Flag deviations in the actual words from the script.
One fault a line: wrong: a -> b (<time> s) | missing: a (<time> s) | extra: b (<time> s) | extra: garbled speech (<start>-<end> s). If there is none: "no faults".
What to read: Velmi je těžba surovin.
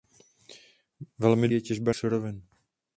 no faults